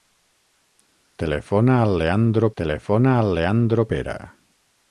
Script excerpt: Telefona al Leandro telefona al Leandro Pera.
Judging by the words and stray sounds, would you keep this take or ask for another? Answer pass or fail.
pass